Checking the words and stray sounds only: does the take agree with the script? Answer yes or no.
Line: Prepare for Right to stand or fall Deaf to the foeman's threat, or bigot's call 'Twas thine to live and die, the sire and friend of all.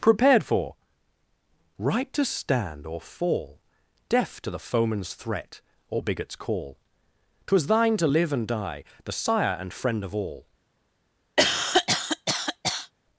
no